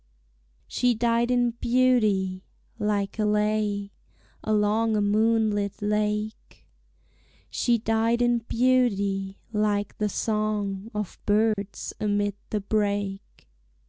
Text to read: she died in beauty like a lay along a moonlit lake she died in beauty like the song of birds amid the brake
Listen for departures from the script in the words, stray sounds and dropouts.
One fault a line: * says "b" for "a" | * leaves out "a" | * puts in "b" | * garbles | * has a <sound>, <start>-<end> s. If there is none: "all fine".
* has a dropout, 11.5-11.6 s